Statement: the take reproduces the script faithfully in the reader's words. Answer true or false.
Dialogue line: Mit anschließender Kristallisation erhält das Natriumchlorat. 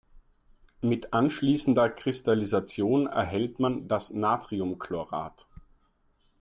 false